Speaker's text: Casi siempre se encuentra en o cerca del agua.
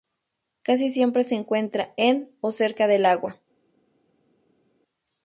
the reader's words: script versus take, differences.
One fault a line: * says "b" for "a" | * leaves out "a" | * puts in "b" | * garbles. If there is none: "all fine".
all fine